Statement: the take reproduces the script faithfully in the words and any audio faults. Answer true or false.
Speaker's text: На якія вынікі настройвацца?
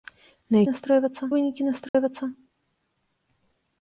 false